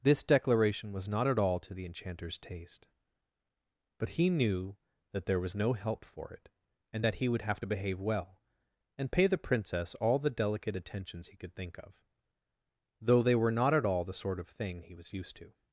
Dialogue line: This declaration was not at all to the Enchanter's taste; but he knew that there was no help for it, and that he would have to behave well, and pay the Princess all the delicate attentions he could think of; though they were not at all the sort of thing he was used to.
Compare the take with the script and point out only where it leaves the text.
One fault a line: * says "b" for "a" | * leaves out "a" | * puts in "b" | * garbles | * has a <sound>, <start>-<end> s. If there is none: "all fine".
all fine